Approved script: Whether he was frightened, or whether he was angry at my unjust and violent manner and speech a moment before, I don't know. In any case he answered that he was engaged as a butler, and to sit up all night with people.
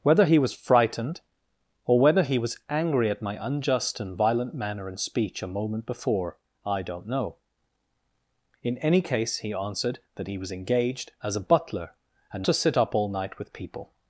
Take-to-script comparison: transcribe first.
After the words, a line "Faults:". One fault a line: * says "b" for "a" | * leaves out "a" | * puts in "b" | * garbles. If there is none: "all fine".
Whether he was frightened, or whether he was angry at my unjust and violent manner and speech a moment before, I don't know. In any case he answered that he was engaged as a butler, and to sit up all night with people.
Faults:
all fine